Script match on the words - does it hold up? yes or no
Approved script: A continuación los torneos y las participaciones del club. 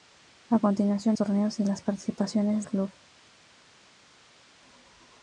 no